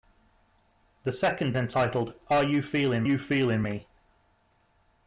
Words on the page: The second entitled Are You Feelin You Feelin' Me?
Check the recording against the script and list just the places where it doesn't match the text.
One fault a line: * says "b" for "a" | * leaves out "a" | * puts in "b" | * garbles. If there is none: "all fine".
all fine